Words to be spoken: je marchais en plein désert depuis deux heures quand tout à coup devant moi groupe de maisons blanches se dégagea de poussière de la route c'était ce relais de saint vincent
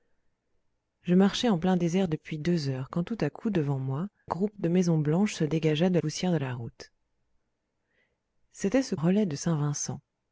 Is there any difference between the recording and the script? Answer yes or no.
no